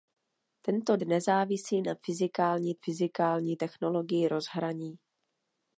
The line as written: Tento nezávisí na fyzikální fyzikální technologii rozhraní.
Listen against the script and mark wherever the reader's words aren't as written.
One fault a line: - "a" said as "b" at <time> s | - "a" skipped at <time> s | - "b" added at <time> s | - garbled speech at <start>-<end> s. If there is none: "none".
none